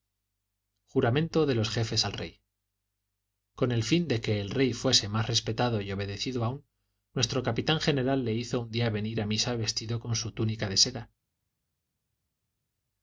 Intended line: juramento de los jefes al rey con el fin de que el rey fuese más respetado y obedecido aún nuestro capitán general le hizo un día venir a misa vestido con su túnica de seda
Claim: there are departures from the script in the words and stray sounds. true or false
false